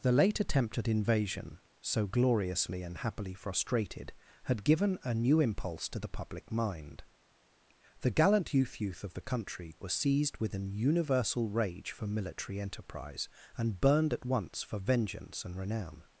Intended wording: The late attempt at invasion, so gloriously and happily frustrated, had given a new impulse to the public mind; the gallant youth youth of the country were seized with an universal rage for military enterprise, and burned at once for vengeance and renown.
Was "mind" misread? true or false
false